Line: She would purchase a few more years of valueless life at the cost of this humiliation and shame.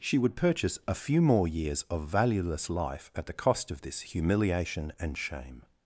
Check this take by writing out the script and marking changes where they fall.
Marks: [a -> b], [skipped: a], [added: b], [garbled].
She would purchase a few more years of valueless life at the cost of this humiliation and shame.